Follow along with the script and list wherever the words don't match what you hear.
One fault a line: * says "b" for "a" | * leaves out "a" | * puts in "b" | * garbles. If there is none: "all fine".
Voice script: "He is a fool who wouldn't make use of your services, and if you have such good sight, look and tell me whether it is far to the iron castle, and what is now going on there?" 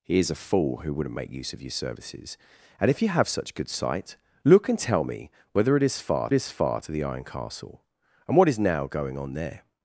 * puts in "is far"